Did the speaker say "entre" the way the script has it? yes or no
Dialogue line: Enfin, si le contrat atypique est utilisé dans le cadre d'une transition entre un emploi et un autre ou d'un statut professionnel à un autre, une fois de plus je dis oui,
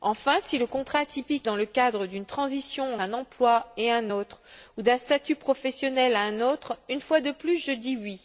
no